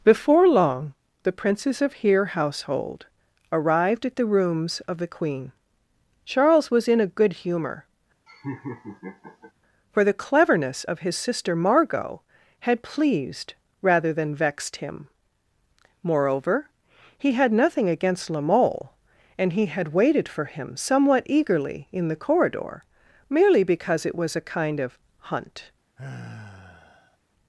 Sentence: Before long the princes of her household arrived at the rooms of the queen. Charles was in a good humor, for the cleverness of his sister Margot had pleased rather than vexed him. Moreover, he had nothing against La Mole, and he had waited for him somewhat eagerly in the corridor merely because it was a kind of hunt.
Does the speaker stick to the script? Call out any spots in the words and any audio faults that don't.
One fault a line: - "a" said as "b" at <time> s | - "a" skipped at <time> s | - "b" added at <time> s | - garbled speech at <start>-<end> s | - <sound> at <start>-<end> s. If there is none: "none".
- "her" said as "here" at 1.9 s
- laugh at 8.3-9.5 s
- sigh at 26.0-27.2 s